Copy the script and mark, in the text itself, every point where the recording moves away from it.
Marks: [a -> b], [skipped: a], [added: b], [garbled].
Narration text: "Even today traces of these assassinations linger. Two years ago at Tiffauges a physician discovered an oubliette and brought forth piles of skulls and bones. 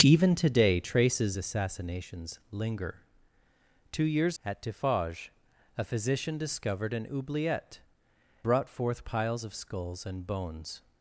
"Even today traces [skipped: of these] assassinations linger. Two years [skipped: ago] at Tiffauges a physician discovered an oubliette [skipped: and] brought forth piles of skulls and bones.